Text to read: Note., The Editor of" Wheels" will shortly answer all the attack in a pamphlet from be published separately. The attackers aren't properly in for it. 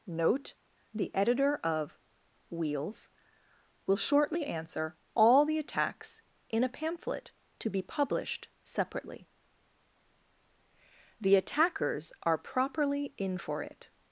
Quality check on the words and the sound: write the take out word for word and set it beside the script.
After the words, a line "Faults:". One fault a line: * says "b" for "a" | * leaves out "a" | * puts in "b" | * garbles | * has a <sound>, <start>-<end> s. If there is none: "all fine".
Note., The Editor of" Wheels" will shortly answer all the attacks in a pamphlet to be published separately. The attackers are properly in for it.
Faults:
* says "attacks" for "attack"
* says "to" for "from"
* says "are" for "aren't"